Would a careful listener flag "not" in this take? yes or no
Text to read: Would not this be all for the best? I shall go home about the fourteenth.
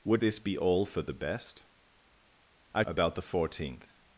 yes